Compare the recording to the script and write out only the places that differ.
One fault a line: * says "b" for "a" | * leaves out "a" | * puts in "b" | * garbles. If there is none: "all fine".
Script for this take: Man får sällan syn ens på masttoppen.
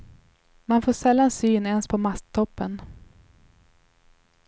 all fine